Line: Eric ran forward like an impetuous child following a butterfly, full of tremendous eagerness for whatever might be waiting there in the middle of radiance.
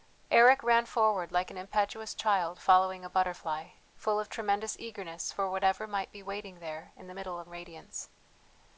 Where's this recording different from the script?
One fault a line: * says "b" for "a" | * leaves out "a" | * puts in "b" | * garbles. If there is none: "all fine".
all fine